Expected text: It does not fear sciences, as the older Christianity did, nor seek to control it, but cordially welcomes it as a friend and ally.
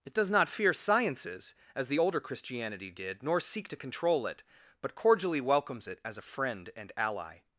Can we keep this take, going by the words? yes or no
yes